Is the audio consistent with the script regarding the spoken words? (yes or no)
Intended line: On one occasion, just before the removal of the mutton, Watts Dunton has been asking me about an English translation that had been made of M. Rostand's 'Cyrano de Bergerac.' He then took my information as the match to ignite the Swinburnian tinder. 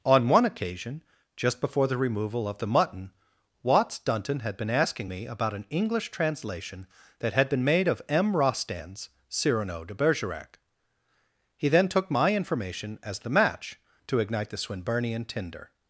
no